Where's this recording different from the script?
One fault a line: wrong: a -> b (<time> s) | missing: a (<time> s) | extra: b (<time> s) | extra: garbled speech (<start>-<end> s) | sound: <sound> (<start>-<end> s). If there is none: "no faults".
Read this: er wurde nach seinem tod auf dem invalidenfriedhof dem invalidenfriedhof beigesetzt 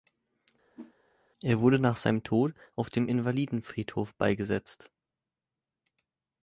sound: whoosh (0.7-0.9 s)
missing: dem invalidenfriedhof (4.1 s)